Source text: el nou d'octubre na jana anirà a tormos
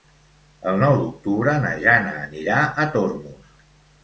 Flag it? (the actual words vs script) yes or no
no